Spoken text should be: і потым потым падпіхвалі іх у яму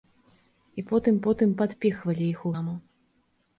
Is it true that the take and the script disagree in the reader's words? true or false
false